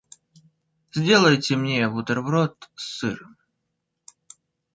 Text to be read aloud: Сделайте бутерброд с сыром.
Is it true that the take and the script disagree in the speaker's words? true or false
true